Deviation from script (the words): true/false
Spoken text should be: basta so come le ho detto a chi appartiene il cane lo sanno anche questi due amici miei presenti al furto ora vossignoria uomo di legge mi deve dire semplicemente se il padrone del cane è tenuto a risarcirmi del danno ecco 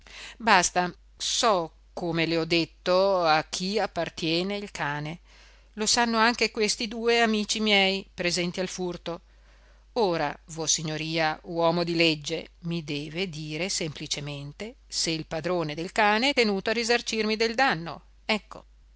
false